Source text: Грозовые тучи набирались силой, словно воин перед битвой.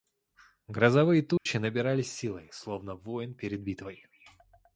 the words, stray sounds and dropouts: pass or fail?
fail